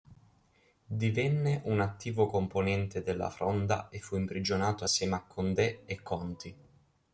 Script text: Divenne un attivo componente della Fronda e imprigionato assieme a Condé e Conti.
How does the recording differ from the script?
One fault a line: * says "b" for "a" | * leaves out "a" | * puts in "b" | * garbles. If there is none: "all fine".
* puts in "fu"